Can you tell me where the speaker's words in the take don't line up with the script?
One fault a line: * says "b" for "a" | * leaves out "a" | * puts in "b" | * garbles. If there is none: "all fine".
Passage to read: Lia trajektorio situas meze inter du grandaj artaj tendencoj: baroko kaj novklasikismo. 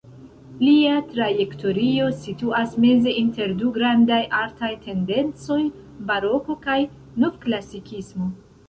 all fine